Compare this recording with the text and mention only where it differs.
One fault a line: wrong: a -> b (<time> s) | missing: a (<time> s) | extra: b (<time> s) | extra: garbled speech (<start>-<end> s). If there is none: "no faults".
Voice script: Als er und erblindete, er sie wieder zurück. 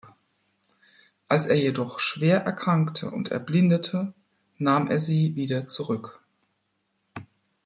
extra: jedoch schwer erkrankte (1.6 s)
extra: nahm (4.6 s)